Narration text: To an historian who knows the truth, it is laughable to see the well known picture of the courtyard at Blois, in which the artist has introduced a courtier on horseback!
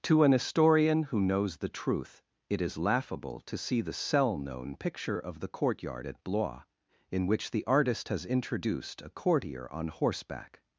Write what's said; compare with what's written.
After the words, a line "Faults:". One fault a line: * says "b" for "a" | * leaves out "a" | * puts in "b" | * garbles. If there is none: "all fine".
To an historian who knows the truth, it is laughable to see the cell known picture of the courtyard at Blois, in which the artist has introduced a courtier on horseback!
Faults:
* says "cell" for "well"